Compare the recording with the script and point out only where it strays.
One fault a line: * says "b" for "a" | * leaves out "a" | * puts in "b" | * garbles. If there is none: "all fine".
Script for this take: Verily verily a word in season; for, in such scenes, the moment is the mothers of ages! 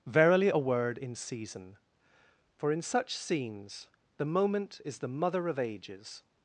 * leaves out "verily"
* says "mother" for "mothers"